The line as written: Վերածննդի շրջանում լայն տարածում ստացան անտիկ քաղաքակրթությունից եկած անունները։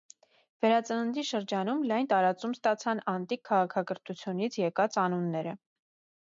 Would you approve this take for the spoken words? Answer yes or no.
yes